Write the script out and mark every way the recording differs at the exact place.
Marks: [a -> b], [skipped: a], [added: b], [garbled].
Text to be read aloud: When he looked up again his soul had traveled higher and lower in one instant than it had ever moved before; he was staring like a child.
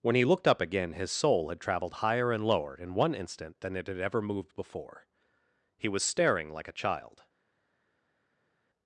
When he looked up again his soul had traveled higher and lower in one instant than it had ever moved before; he was staring like a child.